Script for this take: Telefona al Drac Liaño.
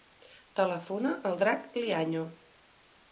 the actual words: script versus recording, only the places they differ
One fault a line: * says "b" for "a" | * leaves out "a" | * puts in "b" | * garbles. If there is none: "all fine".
all fine